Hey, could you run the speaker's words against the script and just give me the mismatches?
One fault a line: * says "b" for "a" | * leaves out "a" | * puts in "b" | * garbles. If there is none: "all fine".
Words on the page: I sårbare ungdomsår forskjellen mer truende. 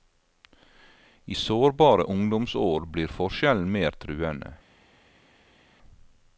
* puts in "blir"